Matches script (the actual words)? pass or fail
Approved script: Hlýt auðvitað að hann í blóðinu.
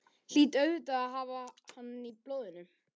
fail